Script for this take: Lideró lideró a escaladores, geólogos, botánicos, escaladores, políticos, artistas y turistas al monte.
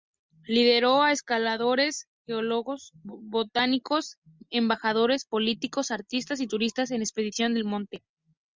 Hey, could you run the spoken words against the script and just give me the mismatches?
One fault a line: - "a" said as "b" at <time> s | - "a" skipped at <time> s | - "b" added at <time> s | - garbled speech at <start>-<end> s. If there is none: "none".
- "lideró" skipped at 1.0 s
- "escaladores" said as "embajadores" at 4.5 s
- "en expediciones" added at 6.9 s